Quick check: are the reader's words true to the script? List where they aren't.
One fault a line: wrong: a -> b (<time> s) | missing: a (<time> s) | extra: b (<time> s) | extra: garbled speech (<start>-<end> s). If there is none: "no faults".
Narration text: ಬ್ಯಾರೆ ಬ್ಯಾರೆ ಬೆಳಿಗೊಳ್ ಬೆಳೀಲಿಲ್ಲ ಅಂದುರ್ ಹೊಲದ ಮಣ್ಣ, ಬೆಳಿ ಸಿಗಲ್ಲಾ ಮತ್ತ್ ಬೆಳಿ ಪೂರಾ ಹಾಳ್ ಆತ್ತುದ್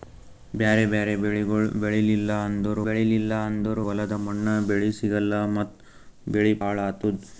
extra: ಬೆಳೀಲಿಲ್ಲ ಅಂದುರ್ (2.9 s)
missing: ಪೂರಾ (6.5 s)